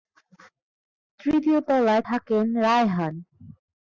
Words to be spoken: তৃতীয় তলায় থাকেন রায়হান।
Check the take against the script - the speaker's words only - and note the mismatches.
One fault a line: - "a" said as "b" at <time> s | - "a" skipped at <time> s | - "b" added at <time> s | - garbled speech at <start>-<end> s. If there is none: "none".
none